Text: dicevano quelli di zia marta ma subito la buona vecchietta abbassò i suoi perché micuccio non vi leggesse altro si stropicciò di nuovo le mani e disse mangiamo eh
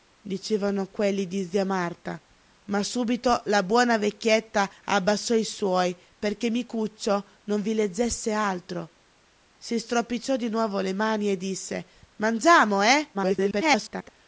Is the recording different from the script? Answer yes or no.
yes